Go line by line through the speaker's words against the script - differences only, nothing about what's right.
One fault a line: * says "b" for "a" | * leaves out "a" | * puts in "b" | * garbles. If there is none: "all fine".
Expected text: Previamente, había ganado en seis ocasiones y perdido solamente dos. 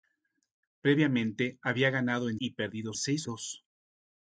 * leaves out "seis ocasiones"
* says "seis" for "solamente"